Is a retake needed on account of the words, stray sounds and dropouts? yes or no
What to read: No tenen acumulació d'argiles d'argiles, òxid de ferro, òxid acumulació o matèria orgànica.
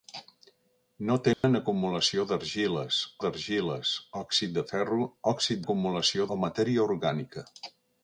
yes